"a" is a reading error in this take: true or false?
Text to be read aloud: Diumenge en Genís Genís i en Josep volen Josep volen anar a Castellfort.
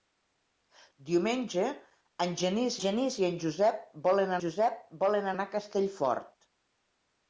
false